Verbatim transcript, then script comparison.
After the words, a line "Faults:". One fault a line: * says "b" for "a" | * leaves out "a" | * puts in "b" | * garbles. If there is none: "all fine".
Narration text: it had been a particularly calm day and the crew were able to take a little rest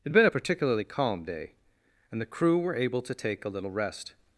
it had been a particularly calm day and the crew were able to take a little rest
Faults:
all fine